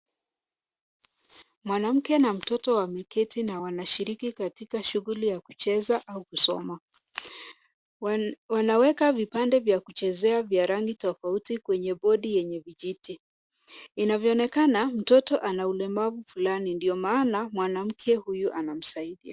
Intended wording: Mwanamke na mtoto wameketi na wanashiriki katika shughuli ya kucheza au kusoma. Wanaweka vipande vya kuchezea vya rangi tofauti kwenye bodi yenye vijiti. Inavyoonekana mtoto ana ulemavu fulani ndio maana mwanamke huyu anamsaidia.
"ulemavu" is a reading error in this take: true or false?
false